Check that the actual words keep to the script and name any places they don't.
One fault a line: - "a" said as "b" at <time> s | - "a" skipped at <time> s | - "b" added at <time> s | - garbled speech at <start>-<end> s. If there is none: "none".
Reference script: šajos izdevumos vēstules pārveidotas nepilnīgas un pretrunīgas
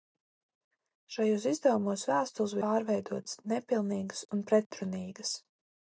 none